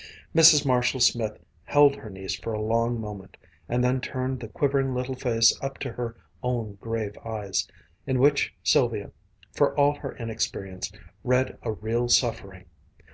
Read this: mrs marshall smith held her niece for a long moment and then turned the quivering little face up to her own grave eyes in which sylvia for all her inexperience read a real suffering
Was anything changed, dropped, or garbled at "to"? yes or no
no